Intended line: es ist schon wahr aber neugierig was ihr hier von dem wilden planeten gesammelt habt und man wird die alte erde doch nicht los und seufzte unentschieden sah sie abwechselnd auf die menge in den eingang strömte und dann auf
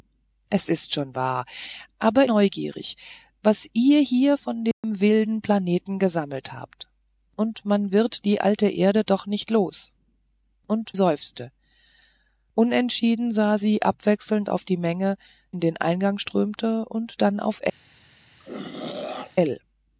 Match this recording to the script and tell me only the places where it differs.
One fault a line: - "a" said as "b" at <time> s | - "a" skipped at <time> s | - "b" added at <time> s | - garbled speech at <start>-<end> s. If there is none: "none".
none